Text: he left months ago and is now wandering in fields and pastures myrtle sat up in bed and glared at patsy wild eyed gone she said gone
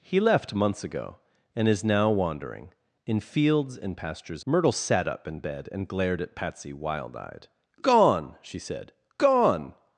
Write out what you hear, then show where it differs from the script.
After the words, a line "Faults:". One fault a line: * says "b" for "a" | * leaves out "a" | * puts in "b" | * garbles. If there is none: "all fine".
he left months ago and is now wandering in fields and pastures myrtle sat up in bed and glared at patsy wild eyed gone she said gone
Faults:
all fine